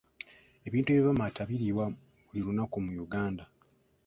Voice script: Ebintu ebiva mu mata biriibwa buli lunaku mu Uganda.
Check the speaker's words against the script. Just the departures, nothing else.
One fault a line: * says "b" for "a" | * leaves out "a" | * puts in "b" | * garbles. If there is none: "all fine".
all fine